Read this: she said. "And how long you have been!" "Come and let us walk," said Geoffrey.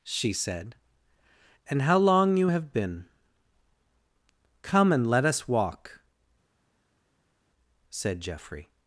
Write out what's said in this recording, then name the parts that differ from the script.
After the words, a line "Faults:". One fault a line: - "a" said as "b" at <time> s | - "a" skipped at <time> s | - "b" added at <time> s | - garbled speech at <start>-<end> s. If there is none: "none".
she said. "And how long you have been!" "Come and let us walk," said Geoffrey.
Faults:
none